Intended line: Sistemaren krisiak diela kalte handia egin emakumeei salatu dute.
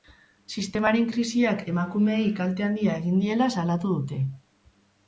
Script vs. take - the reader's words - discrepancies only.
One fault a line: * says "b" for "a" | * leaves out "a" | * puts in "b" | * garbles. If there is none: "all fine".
* says "emakumeei" for "diela"
* says "diela" for "emakumeei"